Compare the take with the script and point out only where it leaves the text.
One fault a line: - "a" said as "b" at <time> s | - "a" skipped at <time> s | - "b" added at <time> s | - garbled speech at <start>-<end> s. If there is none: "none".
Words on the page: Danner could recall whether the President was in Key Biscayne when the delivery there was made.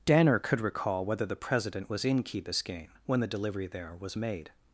none